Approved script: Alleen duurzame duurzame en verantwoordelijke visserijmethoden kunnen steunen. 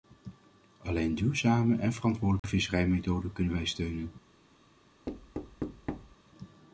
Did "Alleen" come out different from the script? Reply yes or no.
no